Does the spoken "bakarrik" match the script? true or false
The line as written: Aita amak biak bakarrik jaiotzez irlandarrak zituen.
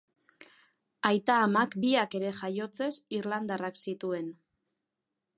false